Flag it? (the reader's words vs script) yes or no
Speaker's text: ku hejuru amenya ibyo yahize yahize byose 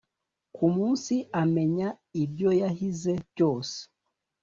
yes